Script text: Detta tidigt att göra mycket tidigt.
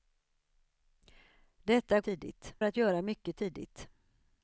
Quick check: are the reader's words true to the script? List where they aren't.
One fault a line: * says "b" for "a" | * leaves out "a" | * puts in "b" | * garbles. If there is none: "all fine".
all fine